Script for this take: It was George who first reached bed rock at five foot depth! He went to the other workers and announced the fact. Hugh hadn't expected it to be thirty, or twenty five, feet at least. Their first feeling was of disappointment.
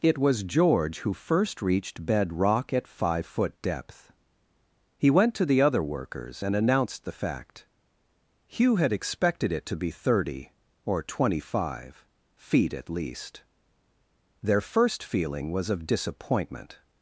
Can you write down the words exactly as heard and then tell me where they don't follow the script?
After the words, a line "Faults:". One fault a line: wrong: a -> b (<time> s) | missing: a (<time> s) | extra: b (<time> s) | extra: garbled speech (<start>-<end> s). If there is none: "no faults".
It was George who first reached bed rock at five foot depth! He went to the other workers and announced the fact. Hugh had expected it to be thirty, or twenty five, feet at least. Their first feeling was of disappointment.
Faults:
wrong: hadn't -> had (8.8 s)